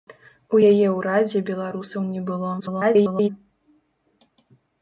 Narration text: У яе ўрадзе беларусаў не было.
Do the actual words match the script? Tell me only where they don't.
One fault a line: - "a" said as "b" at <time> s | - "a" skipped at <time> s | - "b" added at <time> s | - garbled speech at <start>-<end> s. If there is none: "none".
- garbled speech at 2.6-3.3 s